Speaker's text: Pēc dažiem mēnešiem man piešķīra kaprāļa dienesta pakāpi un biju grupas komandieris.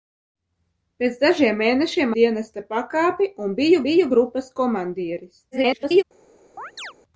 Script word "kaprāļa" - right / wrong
wrong